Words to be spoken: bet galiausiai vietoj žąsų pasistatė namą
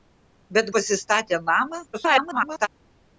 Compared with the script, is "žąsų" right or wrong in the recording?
wrong